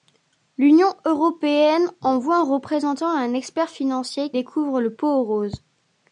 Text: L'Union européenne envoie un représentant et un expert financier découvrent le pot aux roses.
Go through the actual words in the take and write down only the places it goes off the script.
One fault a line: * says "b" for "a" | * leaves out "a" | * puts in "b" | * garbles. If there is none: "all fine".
all fine